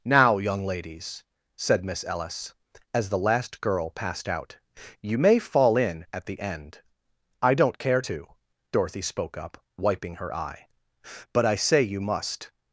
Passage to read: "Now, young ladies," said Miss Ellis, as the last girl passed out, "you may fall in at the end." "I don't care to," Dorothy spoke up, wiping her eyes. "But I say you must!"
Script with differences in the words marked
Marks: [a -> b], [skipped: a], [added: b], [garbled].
"Now, young ladies," said Miss Ellis, as the last girl passed out, "you may fall in at the end." "I don't care to," Dorothy spoke up, wiping her [eyes. -> eye] "But I say you must!"